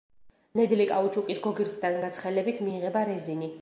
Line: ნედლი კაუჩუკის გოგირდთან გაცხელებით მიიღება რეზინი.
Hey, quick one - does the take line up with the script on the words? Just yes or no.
yes